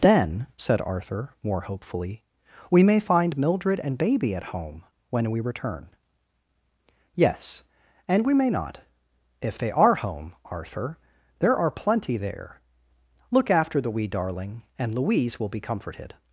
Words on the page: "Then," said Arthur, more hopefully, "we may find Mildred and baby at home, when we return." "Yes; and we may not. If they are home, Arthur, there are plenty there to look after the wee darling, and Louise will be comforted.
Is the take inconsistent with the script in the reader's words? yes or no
yes